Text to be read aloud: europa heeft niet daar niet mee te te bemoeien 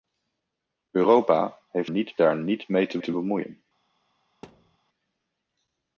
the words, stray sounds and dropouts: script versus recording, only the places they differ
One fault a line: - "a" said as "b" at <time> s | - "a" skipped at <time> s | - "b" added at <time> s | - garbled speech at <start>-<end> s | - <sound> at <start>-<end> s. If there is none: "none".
- thud at 4.4-4.8 s